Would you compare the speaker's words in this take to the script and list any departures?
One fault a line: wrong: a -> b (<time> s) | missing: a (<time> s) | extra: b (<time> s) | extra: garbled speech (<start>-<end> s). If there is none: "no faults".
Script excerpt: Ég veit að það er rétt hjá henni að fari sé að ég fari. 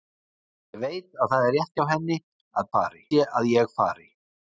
no faults